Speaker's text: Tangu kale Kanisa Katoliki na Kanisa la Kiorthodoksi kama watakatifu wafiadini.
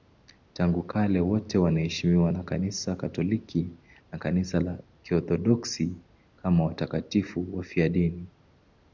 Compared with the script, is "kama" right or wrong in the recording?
right